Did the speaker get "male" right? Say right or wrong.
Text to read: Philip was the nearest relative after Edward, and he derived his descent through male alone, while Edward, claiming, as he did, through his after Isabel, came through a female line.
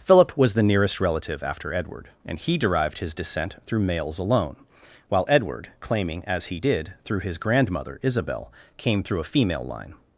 wrong